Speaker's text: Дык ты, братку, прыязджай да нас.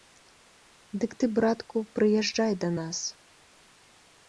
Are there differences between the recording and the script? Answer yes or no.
no